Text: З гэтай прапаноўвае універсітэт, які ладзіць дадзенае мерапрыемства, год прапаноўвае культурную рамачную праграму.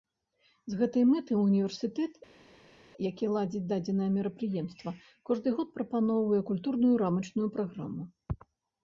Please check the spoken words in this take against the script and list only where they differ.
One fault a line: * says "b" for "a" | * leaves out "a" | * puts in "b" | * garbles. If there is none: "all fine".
* says "мэтай" for "прапаноўвае"
* puts in "кожны"